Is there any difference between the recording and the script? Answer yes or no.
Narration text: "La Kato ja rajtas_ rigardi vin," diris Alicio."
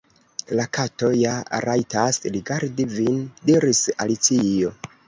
no